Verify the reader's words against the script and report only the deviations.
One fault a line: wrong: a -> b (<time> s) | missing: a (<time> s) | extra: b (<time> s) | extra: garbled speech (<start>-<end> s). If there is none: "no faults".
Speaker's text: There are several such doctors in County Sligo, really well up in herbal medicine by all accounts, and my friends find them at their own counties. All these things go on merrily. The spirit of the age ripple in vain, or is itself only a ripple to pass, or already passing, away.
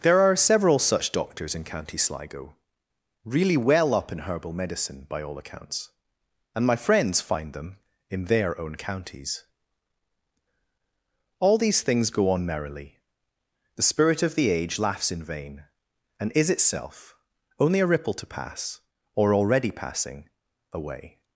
wrong: at -> in (8.1 s)
wrong: ripple -> laughs (14.8 s)
wrong: or -> and (16.2 s)